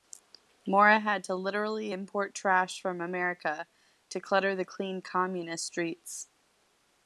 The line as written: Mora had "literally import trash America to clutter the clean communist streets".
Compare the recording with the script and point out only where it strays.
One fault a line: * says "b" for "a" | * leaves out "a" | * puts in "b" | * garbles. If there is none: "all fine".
* puts in "to"
* puts in "from"